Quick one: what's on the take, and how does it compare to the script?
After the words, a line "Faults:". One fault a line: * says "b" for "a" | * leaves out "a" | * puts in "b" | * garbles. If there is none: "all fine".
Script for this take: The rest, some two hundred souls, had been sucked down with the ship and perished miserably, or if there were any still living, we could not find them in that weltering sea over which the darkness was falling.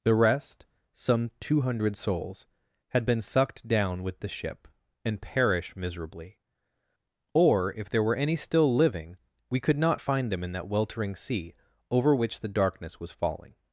The rest, some two hundred souls, had been sucked down with the ship and perish miserably, or if there were any still living, we could not find them in that weltering sea over which the darkness was falling.
Faults:
* says "perish" for "perished"